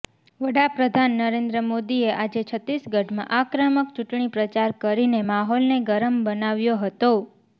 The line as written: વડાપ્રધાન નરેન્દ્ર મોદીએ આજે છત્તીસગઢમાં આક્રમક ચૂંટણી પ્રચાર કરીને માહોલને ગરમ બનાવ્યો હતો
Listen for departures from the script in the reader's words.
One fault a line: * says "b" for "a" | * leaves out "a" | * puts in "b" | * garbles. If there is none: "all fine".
all fine